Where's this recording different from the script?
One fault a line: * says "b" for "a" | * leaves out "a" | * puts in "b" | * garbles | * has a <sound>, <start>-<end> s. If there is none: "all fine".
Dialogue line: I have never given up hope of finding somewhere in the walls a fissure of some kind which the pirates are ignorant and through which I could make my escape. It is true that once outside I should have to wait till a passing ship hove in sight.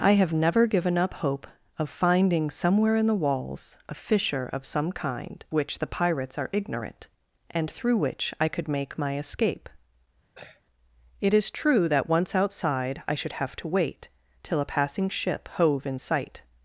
* has a throat clearing, 10.3-10.6 s